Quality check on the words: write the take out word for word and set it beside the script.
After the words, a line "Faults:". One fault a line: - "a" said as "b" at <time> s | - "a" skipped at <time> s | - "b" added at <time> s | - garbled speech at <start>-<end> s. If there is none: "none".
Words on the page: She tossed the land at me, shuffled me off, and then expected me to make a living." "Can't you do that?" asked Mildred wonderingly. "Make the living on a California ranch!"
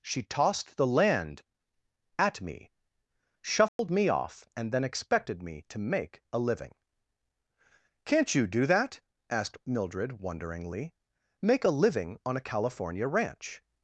She tossed the land at me, shuffled me off, and then expected me to make a living." "Can't you do that?" asked Mildred wonderingly. "Make a living on a California ranch!"
Faults:
- "the" said as "a" at 11.7 s